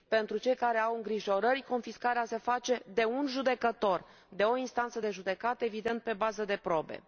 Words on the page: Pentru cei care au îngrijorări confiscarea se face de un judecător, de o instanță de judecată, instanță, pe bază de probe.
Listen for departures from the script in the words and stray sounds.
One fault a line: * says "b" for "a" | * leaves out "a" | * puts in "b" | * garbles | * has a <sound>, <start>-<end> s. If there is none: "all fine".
* says "evident" for "instanță"